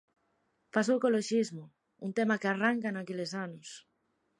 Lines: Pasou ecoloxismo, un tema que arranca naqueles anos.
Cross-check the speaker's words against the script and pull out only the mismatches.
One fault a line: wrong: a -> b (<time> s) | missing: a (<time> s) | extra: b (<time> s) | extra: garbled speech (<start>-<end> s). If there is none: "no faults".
no faults